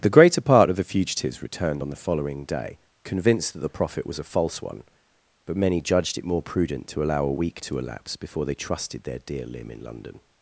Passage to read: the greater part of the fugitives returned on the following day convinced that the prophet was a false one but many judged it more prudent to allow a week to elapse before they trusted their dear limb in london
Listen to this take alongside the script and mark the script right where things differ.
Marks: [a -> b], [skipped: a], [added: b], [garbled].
the greater part of the fugitives returned on the following day convinced that the prophet was a false one but many judged it more prudent to allow a week to elapse before they trusted their dear limb in london